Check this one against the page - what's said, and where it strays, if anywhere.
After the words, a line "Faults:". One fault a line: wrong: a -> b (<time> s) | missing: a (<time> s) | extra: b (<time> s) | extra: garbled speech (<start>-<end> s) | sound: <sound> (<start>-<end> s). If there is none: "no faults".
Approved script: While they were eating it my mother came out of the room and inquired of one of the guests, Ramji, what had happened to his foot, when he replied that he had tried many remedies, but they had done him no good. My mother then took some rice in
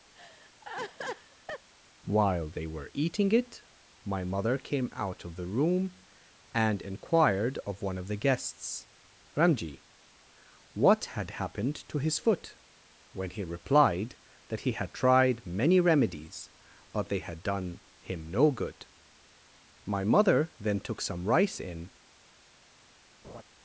While they were eating it my mother came out of the room and inquired of one of the guests, Ramji, what had happened to his foot, when he replied that he had tried many remedies, but they had done him no good. My mother then took some rice in
Faults:
sound: laugh (0.1-1.7 s)
sound: laugh (23.2-23.4 s)